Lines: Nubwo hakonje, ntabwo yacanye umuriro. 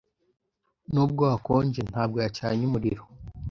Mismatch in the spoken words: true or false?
false